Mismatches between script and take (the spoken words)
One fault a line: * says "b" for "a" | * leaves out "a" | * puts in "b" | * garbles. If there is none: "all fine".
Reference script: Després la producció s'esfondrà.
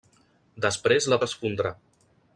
* leaves out "producció"